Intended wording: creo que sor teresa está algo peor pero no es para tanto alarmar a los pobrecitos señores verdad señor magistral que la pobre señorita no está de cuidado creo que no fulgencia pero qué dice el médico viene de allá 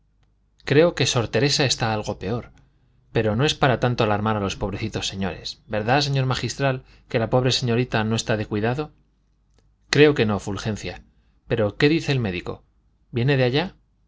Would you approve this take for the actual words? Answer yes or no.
yes